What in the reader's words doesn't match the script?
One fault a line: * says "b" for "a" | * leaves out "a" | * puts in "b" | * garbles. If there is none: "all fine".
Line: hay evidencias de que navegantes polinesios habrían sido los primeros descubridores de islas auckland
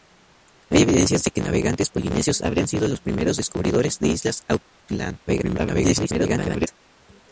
* garbles